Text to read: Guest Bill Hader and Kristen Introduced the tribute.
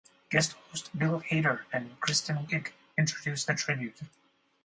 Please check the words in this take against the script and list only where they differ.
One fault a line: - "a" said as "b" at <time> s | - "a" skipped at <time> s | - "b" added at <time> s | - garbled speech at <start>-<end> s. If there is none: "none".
- "host" added at 0.5 s
- "Wiig" added at 2.4 s